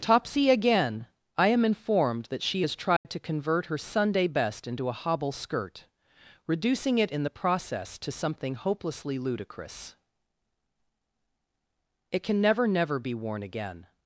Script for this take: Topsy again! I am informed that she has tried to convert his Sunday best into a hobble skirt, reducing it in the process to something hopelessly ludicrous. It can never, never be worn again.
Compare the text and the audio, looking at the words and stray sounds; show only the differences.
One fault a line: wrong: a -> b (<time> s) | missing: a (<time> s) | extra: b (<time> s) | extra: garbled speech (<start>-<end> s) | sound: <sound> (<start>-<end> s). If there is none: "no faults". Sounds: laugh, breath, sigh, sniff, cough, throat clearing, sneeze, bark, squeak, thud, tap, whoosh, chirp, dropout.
sound: dropout (3.0-3.1 s)
wrong: his -> her (3.6 s)